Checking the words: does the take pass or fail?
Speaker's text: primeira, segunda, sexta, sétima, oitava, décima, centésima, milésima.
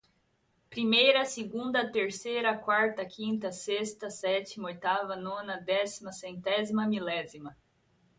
fail